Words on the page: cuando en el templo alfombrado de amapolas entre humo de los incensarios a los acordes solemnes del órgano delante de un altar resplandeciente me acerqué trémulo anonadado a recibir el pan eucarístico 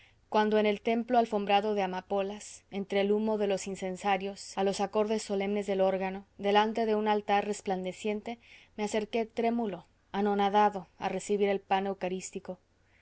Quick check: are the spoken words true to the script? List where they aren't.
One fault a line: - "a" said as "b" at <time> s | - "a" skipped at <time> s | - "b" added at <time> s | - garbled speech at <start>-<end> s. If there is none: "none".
- "el" added at 3.0 s